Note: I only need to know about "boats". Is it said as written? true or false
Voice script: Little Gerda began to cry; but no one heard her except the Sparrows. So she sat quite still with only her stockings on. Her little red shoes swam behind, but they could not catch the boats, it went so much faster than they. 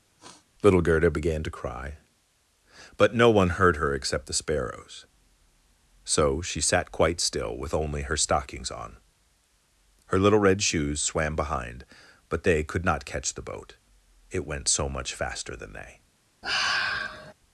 false